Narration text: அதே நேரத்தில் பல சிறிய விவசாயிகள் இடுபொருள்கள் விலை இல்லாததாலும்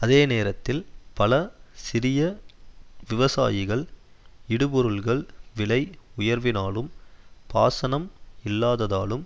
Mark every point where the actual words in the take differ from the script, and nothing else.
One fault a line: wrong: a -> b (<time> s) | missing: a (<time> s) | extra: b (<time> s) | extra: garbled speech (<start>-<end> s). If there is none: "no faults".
extra: உயர்வினாலும் பாசனம் (6.2 s)